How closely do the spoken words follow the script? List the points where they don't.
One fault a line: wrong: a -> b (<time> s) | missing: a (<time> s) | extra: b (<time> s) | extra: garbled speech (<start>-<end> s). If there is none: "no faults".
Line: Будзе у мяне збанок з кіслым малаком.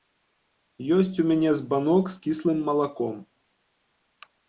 wrong: Будзе -> Ёсць (0.9 s)